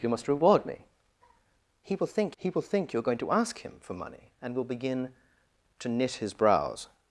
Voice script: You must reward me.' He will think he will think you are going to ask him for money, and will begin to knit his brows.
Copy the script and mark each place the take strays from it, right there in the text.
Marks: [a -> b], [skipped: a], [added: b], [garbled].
You must reward me.' He will think he will think you are going to ask him for money, and will begin to knit his brows.